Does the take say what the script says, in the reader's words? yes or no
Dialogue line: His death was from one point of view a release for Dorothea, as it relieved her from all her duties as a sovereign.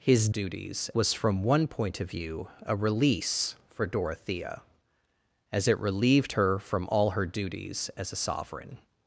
no